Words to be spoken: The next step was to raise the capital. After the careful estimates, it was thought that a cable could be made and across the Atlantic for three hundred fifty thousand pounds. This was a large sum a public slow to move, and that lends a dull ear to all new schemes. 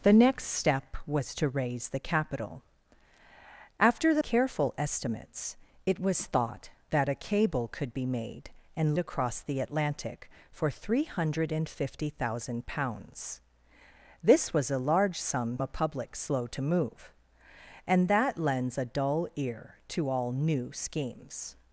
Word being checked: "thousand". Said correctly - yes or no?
yes